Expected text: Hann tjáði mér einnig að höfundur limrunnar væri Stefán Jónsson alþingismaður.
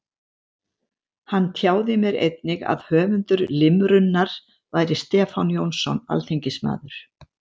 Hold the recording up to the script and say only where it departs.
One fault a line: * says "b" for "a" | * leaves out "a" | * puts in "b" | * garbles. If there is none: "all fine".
all fine